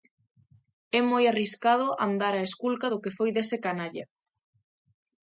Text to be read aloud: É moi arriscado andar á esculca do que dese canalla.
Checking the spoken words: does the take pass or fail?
fail